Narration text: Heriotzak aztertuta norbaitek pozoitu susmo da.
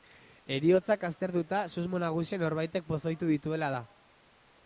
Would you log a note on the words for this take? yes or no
yes